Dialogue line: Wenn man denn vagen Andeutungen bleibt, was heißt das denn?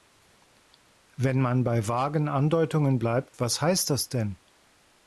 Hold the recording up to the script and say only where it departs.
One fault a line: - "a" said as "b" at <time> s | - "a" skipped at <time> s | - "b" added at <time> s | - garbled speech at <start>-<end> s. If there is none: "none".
- "denn" said as "bei" at 1.6 s